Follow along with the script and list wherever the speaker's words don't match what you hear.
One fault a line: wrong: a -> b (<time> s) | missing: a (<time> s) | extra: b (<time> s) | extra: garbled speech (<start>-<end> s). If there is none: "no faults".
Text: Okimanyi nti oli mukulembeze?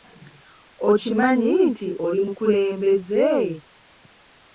no faults